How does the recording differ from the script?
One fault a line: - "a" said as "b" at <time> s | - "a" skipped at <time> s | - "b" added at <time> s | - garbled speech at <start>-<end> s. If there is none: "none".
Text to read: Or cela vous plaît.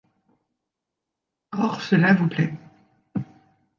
none